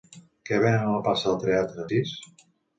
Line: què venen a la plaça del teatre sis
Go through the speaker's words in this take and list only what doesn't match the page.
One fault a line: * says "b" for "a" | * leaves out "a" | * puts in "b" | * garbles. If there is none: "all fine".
all fine